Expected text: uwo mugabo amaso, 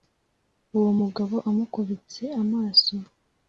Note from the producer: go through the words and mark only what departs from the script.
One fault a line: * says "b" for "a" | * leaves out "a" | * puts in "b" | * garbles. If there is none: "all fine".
* puts in "amukubitse"